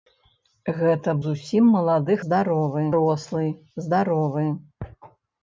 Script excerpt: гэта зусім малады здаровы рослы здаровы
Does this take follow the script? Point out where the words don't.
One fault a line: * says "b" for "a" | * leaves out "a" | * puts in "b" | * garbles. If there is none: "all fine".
all fine